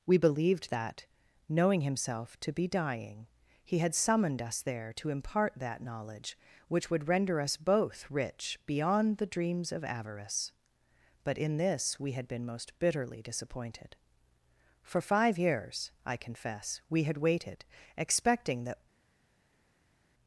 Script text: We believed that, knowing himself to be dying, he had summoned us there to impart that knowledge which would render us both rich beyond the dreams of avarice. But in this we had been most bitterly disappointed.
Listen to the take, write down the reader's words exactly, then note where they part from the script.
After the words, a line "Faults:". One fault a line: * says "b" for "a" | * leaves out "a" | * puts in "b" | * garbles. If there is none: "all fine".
We believed that, knowing himself to be dying, he had summoned us there to impart that knowledge which would render us both rich beyond the dreams of avarice. But in this we had been most bitterly disappointed. For five years, I confess, we had waited, expecting that
Faults:
* puts in "For five years I confess we had waited expecting that"